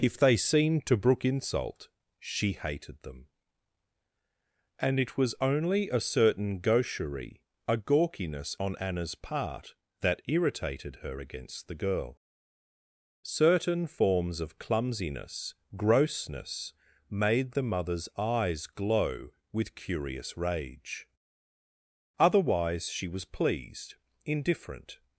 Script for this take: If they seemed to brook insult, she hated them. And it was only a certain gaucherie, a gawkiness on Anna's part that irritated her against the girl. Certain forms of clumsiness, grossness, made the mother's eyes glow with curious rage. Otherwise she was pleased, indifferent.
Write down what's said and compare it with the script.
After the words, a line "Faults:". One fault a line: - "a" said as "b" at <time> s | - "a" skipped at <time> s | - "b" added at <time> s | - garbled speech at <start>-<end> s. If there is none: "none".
If they seemed to brook insult, she hated them. And it was only a certain gaucherie, a gawkiness on Anna's part that irritated her against the girl. Certain forms of clumsiness, grossness, made the mother's eyes glow with curious rage. Otherwise she was pleased, indifferent.
Faults:
none